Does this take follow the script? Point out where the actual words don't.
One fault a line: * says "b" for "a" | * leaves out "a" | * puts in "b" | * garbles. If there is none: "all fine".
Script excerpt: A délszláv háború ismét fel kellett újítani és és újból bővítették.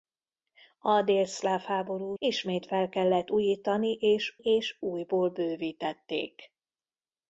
all fine